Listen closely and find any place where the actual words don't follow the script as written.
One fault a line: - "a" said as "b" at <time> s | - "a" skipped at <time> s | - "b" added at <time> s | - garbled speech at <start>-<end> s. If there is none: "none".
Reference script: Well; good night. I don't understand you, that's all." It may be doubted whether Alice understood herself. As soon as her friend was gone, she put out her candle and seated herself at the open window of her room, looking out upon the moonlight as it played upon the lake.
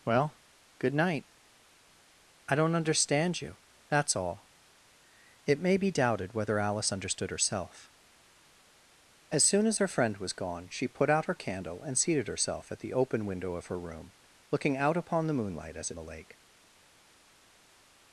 - "it played upon" skipped at 15.9 s